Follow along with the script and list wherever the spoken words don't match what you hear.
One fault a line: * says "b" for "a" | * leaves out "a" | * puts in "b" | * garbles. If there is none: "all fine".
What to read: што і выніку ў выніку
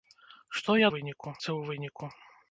all fine